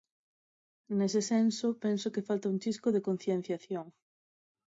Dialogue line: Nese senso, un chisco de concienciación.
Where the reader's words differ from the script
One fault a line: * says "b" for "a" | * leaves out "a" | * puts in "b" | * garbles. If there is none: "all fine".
* puts in "penso que falta"